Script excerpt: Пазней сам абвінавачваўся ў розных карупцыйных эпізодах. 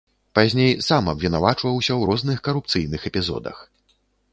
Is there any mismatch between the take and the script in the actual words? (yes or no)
no